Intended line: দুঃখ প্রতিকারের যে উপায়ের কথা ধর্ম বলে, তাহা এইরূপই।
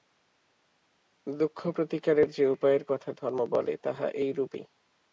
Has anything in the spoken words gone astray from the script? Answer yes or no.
no